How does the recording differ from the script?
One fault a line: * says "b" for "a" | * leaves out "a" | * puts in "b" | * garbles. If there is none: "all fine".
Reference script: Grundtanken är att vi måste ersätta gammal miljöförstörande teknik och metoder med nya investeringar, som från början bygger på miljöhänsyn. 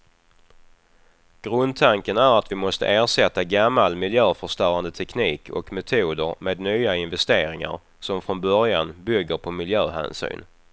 all fine